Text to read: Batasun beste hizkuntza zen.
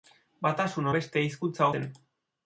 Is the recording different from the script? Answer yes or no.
no